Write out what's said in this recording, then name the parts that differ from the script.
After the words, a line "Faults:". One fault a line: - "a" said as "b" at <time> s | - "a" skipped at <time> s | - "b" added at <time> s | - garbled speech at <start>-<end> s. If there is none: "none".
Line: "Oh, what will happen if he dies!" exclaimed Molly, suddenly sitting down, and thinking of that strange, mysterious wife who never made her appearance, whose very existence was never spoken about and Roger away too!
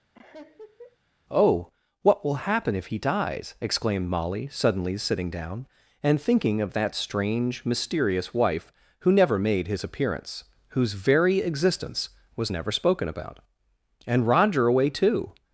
"Oh, what will happen if he dies!" exclaimed Molly, suddenly sitting down, and thinking of that strange, mysterious wife who never made his appearance, whose very existence was never spoken about and Roger away too!
Faults:
- "her" said as "his" at 9.7 s